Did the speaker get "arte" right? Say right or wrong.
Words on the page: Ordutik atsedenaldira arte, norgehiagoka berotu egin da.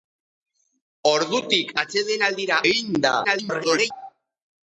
wrong